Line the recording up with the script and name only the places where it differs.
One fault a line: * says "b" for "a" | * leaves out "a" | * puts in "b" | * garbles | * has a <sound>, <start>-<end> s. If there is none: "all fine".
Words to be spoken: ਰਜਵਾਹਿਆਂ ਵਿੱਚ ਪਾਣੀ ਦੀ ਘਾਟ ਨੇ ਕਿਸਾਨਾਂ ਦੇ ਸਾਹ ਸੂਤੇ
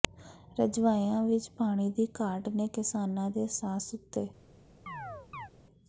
* has a chirp, 4.9-5.5 s